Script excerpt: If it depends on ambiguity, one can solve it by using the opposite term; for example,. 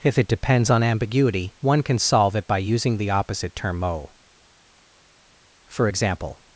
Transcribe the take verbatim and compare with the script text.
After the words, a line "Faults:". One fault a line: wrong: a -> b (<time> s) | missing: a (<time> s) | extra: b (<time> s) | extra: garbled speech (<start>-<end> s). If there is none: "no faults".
If it depends on ambiguity, one can solve it by using the opposite term; mo for example,.
Faults:
extra: mo (3.8 s)